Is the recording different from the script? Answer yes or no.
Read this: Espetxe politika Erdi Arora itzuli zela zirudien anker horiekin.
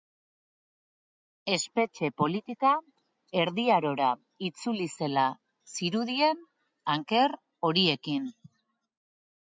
no